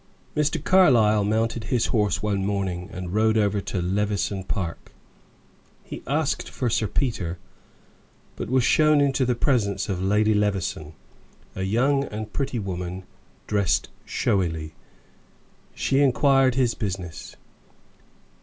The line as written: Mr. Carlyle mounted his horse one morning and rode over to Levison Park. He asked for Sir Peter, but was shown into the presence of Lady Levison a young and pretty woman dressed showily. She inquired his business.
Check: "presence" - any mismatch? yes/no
no